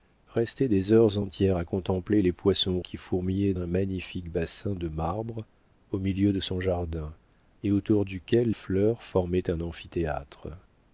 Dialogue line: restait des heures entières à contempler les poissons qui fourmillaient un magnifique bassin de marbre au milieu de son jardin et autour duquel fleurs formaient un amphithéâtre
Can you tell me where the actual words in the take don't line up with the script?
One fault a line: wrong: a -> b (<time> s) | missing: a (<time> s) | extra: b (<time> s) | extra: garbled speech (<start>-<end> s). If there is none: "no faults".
no faults